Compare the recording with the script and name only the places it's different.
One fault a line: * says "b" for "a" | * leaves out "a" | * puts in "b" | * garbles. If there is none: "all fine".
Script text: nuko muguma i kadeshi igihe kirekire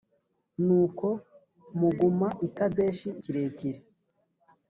* leaves out "igihe"